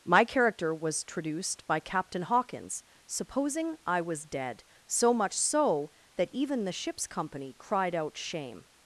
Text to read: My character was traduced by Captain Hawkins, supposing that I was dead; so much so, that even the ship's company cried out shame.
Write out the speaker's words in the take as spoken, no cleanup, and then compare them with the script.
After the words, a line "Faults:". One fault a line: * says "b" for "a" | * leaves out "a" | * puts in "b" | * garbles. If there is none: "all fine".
My character was traduced by Captain Hawkins, supposing I was dead; so much so, that even the ship's company cried out shame.
Faults:
* leaves out "that"